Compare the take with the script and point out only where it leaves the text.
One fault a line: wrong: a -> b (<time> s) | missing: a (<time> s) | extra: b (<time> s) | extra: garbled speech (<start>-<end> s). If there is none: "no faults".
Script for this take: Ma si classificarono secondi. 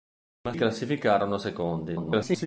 missing: si (0.5 s)
extra: garbled speech (1.9-2.5 s)